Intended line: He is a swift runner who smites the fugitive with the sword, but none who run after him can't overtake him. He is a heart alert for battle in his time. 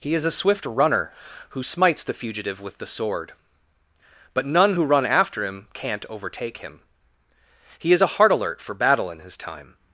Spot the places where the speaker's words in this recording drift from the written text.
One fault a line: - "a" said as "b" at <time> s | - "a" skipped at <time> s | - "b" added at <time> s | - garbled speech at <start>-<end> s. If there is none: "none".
none